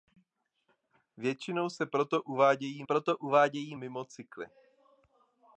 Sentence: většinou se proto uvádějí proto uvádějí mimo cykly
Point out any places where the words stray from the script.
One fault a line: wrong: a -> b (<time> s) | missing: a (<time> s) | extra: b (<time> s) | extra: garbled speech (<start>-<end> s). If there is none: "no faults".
no faults